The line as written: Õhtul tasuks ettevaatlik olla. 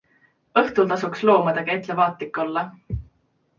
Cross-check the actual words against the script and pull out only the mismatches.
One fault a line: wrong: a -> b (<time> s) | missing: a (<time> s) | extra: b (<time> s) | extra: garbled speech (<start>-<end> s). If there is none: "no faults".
extra: loomadega (1.3 s)